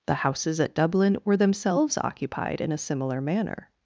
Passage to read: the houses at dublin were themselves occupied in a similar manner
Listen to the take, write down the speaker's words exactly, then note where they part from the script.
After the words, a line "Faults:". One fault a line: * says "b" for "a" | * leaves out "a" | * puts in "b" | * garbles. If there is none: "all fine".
the houses at dublin were themselves occupied in a similar manner
Faults:
all fine